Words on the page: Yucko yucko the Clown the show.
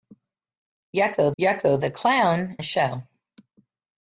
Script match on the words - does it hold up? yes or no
yes